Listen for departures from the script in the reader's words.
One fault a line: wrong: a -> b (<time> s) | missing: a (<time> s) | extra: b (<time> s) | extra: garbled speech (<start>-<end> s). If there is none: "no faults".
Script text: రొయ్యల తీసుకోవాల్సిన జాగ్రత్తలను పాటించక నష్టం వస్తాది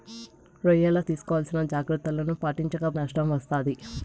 no faults